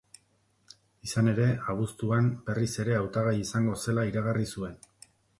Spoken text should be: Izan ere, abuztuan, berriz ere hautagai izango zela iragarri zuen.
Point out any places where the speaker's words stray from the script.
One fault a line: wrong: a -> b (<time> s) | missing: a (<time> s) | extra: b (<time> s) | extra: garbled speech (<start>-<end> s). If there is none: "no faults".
no faults